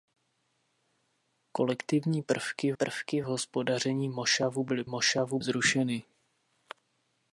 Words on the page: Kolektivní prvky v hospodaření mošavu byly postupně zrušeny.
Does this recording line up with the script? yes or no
no